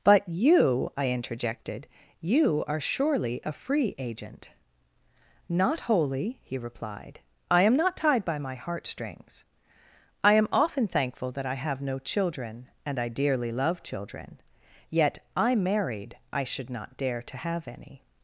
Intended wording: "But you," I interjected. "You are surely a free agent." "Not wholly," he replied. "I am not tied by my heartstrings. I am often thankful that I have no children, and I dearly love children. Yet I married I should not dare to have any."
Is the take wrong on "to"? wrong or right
right